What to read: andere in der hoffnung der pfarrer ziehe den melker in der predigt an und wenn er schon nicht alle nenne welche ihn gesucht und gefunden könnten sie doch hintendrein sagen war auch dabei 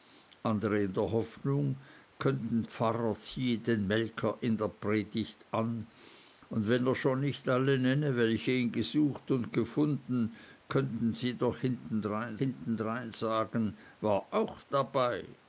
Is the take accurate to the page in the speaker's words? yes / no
no